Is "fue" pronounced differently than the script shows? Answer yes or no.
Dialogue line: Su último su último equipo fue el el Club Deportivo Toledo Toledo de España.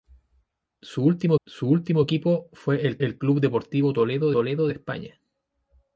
no